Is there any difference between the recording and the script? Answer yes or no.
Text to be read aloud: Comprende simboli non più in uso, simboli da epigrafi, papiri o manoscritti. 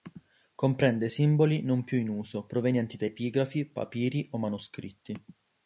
yes